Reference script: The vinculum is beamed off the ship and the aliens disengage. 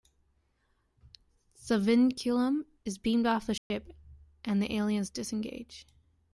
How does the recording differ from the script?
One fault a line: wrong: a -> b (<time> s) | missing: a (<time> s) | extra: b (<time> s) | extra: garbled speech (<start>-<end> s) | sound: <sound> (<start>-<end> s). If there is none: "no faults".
sound: dropout (3.6-3.7 s)